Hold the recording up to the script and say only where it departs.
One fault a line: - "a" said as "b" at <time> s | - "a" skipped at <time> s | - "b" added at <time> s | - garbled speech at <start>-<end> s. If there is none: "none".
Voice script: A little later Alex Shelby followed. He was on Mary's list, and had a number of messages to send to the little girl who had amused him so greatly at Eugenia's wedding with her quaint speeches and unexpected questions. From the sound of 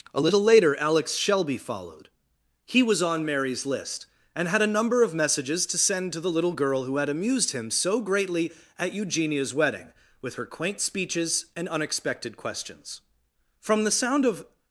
none